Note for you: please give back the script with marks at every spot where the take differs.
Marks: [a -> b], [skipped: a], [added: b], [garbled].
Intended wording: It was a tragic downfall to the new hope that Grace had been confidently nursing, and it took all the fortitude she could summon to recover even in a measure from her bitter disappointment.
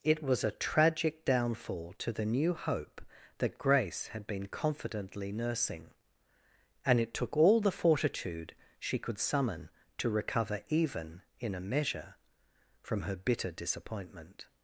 It was a tragic downfall to the new hope that Grace had been confidently nursing, and it took all the fortitude she could summon to recover even in a measure from her bitter disappointment.